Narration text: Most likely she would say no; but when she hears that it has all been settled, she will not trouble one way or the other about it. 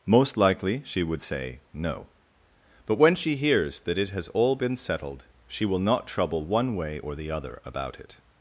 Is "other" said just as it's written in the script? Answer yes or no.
yes